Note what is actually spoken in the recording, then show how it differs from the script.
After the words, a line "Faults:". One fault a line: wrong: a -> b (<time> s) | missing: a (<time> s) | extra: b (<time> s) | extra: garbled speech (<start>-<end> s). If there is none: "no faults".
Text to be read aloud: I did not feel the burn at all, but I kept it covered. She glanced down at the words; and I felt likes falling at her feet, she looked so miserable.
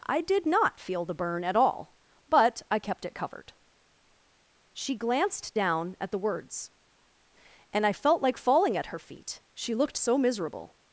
I did not feel the burn at all, but I kept it covered. She glanced down at the words; and I felt like falling at her feet, she looked so miserable.
Faults:
wrong: likes -> like (8.2 s)